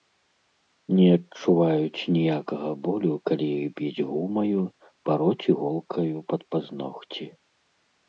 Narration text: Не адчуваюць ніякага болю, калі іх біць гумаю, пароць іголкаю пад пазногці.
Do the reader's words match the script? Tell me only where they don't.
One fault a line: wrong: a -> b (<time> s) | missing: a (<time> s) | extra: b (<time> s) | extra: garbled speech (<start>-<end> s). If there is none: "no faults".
no faults